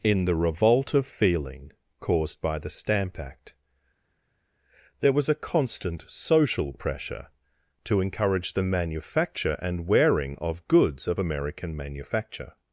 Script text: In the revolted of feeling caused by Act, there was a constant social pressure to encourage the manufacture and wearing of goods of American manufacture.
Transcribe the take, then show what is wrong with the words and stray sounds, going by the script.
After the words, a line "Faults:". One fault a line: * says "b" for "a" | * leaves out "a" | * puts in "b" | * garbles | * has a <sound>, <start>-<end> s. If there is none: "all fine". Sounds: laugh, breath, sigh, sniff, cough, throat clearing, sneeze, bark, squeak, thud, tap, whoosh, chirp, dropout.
In the revolt of feeling caused by the Stamp Act, there was a constant social pressure to encourage the manufacture and wearing of goods of American manufacture.
Faults:
* says "revolt" for "revolted"
* puts in "the Stamp"